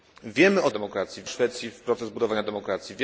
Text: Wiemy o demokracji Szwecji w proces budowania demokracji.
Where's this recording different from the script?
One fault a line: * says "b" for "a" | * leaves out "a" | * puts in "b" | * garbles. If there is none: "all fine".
all fine